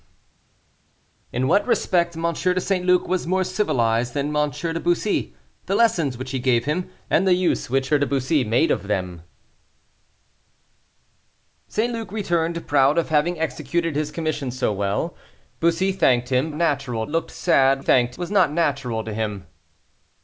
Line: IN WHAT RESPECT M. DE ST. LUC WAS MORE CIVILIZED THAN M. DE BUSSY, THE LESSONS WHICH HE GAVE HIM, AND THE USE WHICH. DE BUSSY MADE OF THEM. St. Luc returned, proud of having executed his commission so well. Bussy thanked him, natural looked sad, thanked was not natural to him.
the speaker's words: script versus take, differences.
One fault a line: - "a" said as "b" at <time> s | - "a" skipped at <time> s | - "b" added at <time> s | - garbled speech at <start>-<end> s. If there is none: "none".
none